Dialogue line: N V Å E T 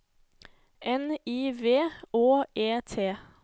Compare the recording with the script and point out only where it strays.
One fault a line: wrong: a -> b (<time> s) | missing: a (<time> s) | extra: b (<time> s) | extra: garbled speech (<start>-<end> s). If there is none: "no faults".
extra: I (1.2 s)